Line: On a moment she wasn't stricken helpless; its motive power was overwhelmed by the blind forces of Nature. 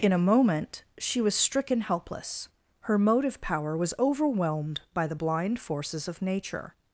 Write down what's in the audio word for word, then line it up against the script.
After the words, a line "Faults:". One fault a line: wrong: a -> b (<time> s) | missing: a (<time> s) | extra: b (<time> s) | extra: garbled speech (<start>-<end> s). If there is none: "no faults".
In a moment she was stricken helpless; her motive power was overwhelmed by the blind forces of Nature.
Faults:
wrong: On -> In (0.0 s)
wrong: wasn't -> was (1.2 s)
wrong: its -> her (2.8 s)